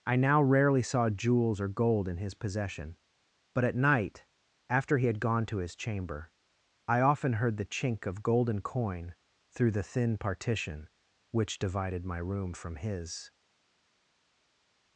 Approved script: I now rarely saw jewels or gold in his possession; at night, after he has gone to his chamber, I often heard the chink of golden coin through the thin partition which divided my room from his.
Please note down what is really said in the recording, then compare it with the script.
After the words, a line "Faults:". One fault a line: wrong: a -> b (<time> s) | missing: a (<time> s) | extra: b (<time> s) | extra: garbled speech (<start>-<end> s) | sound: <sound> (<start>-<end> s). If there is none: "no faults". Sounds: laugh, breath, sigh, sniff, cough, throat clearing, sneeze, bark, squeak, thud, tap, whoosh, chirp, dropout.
I now rarely saw jewels or gold in his possession; but at night, after he had gone to his chamber, I often heard the chink of golden coin through the thin partition which divided my room from his.
Faults:
extra: but (3.5 s)
wrong: has -> had (5.0 s)